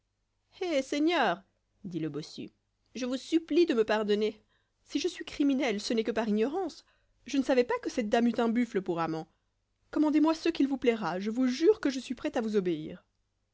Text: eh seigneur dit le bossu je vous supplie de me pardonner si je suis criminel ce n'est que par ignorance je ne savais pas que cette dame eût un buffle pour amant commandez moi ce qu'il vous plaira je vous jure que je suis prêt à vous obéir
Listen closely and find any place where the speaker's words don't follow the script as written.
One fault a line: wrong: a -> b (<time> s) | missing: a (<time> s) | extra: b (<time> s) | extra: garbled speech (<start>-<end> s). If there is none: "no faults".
no faults